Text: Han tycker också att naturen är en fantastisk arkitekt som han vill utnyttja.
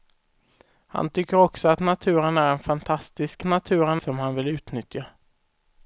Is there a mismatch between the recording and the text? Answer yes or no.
yes